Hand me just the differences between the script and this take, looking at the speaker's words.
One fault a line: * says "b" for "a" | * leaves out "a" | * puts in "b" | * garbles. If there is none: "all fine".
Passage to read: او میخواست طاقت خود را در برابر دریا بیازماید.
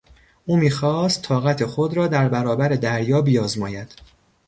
all fine